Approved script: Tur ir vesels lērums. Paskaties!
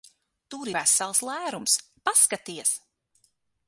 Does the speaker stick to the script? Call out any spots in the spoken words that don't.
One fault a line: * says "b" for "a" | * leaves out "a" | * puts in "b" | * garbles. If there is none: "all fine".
* leaves out "ir"